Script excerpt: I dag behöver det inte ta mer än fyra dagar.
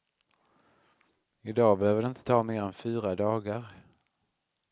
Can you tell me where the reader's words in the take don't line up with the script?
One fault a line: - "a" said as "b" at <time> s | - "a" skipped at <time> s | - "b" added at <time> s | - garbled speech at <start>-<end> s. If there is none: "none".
none